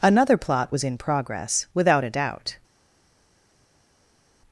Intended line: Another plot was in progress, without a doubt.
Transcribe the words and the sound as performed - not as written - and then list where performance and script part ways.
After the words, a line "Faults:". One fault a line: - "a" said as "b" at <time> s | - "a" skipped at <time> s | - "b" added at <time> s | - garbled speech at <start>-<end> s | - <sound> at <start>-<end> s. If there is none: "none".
Another plot was in progress, without a doubt.
Faults:
none